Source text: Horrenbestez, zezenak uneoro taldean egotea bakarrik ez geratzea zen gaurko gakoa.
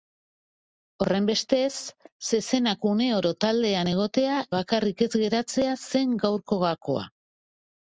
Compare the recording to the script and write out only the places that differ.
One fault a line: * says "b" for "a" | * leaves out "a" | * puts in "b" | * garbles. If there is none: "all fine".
all fine